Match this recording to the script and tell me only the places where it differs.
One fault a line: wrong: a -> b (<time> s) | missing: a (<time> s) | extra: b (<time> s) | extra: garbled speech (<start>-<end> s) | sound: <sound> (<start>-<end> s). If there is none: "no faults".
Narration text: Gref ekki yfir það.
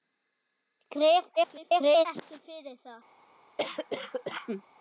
extra: garbled speech (1.4-2.1 s)
sound: cough (3.6-4.6 s)